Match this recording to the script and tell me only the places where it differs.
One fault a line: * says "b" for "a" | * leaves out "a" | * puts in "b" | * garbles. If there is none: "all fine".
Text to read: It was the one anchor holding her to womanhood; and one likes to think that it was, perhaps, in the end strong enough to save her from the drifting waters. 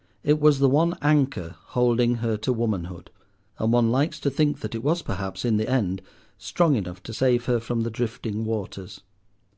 all fine